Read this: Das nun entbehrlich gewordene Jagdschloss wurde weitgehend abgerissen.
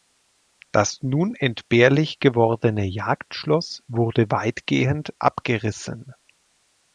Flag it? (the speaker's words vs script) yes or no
no